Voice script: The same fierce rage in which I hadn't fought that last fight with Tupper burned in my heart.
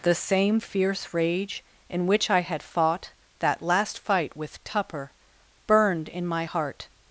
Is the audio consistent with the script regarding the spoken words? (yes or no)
no